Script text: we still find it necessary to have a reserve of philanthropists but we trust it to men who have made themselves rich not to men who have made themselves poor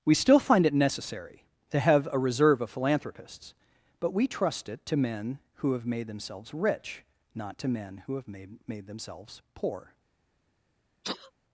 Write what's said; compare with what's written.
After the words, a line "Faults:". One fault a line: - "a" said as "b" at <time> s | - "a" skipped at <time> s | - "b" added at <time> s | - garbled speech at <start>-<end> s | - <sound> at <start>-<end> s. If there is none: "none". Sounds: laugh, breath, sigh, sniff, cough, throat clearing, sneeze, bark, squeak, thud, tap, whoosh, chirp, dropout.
we still find it necessary to have a reserve of philanthropists but we trust it to men who have made themselves rich not to men who have made made themselves poor
Faults:
- "made" added at 8.7 s
- sneeze at 11.0-11.3 s